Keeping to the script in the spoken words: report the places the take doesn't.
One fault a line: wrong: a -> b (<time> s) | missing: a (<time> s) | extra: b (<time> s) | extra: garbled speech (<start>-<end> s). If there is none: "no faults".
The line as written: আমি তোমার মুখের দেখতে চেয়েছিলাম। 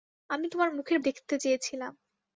no faults